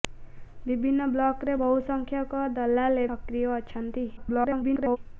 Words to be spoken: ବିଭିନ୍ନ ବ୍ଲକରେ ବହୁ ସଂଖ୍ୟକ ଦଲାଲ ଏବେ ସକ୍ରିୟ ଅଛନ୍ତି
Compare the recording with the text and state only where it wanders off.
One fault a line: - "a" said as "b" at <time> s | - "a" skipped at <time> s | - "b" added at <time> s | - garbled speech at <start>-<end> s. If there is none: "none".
- "ଏବେ" skipped at 3.0 s
- garbled speech at 4.2-5.0 s